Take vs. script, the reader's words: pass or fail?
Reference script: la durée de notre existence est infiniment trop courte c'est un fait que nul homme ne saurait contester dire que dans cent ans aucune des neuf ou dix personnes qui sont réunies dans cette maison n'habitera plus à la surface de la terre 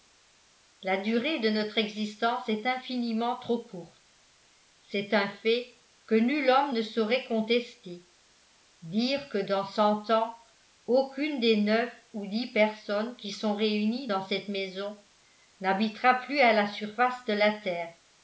pass